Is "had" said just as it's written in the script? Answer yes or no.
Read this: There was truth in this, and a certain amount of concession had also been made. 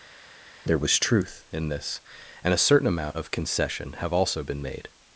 no